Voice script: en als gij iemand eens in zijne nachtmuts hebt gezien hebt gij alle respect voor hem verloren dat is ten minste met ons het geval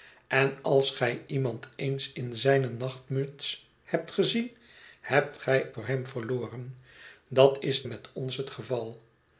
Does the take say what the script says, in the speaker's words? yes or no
no